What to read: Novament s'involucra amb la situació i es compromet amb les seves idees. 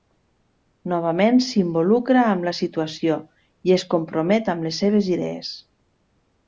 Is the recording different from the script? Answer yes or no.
no